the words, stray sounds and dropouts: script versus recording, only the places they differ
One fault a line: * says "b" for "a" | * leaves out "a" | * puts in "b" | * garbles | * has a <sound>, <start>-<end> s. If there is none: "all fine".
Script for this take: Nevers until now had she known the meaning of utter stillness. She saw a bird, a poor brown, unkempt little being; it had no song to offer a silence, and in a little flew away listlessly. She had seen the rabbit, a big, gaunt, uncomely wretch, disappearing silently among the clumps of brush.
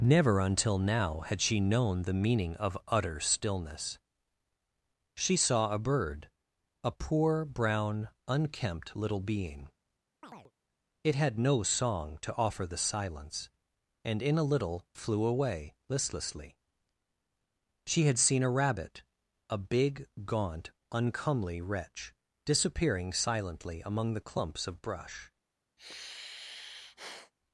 * says "Never" for "Nevers"
* has a chirp, 10.2-10.5 s
* says "the" for "a"
* says "a" for "the"
* has a sigh, 25.8-27.3 s